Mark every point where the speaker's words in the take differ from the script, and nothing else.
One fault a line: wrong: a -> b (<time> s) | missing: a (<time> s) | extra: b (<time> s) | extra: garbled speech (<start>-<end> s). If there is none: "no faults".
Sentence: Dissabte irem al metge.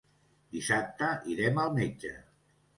no faults